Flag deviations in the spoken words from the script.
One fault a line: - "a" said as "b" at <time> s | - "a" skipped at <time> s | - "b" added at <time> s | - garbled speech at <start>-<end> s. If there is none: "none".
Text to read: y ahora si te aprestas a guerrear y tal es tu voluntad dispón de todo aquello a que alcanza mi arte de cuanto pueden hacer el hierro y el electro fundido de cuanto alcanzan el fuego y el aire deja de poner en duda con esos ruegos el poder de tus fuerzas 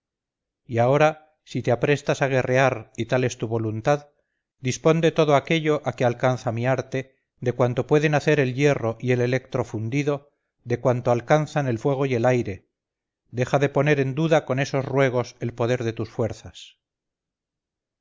none